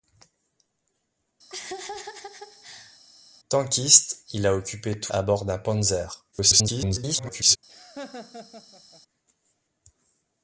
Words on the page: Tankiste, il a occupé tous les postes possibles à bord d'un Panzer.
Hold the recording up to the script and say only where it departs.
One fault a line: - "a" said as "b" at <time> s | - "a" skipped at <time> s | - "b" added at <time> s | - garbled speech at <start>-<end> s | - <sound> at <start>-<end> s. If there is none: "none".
- laugh at 1.5-3.0 s
- "les postes possibles" skipped at 5.1 s
- garbled speech at 6.3-7.6 s
- laugh at 7.7-9.0 s